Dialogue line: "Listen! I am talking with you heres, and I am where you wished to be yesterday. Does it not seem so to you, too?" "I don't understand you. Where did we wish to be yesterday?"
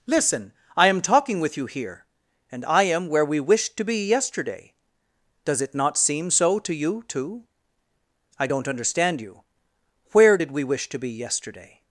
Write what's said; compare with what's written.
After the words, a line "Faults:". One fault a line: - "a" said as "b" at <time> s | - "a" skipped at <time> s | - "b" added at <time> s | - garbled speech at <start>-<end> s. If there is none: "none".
"Listen! I am talking with you here, and I am where we wished to be yesterday. Does it not seem so to you, too?" "I don't understand you. Where did we wish to be yesterday?"
Faults:
- "heres" said as "here" at 1.6 s
- "you" said as "we" at 3.2 s